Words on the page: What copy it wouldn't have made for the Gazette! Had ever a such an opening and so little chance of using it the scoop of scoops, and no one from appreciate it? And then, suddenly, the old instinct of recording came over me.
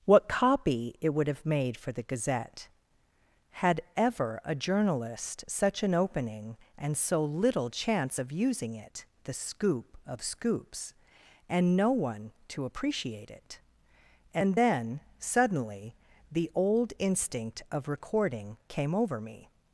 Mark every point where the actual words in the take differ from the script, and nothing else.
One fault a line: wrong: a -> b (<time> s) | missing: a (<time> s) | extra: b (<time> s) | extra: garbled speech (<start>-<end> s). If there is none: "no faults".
wrong: wouldn't -> would (1.1 s)
extra: journalist (4.5 s)
wrong: from -> to (12.5 s)